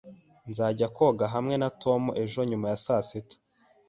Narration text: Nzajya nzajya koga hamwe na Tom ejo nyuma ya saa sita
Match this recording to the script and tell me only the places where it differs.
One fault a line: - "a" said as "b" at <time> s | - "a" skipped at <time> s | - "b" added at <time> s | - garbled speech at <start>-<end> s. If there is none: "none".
- "nzajya" skipped at 0.9 s